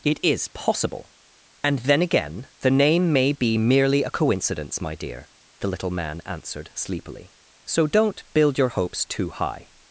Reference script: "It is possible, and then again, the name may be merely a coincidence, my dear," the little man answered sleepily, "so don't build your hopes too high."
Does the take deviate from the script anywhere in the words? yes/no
no